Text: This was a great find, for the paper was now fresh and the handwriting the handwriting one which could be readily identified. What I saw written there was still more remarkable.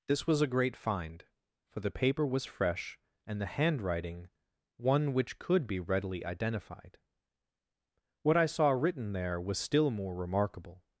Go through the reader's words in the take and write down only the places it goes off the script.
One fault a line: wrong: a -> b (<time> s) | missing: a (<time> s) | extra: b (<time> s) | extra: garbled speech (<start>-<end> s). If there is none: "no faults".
missing: now (2.5 s)
missing: the handwriting (4.3 s)